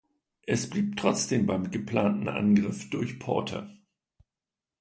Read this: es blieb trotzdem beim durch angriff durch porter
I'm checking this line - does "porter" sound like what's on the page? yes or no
yes